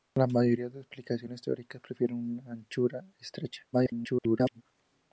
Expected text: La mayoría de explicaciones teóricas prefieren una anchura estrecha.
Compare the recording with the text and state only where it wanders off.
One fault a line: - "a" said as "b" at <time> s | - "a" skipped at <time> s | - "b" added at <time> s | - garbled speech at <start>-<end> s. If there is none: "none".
- garbled speech at 3.7-4.6 s